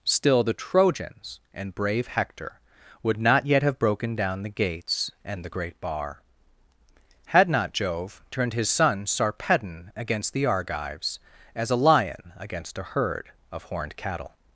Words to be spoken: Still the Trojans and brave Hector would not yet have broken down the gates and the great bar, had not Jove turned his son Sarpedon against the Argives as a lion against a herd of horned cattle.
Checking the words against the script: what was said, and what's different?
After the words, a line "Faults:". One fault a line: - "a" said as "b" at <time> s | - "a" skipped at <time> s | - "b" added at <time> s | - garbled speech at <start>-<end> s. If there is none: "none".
Still the Trojans and brave Hector would not yet have broken down the gates and the great bar, had not Jove turned his son Sarpedon against the Argives as a lion against a herd of horned cattle.
Faults:
none